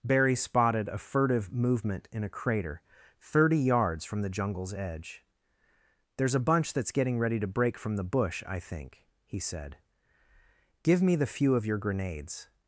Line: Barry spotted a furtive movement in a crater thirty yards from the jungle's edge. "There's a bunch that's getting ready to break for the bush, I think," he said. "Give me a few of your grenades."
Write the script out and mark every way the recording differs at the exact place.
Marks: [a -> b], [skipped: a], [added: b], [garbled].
Barry spotted a furtive movement in a crater thirty yards from the jungle's edge. "There's a bunch that's getting ready to break [for -> from] the bush, I think," he said. "Give me [a -> the] few of your grenades."